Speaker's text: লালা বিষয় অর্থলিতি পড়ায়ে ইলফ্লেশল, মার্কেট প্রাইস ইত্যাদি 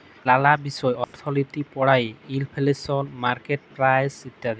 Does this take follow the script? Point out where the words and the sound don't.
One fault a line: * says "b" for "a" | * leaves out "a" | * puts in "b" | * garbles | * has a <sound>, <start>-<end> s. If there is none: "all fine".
* has a dropout, 1.0-1.1 s